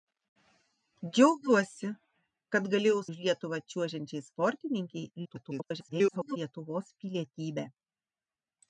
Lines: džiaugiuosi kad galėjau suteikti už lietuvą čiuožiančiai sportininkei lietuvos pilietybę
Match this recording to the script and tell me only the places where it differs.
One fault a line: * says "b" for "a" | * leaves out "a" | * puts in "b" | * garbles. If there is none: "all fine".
* leaves out "suteikti"
* garbles